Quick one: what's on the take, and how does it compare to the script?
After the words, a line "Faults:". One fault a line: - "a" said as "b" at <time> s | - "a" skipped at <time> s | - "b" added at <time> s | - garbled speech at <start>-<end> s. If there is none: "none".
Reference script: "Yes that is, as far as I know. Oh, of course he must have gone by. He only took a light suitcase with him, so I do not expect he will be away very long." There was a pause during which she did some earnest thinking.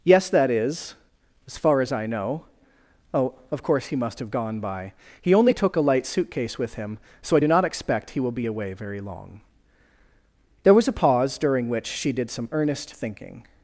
"Yes that is, as far as I know. Oh, of course he must have gone by. He only took a light suitcase with him, so I do not expect he will be away very long." There was a pause during which she did some earnest thinking.
Faults:
none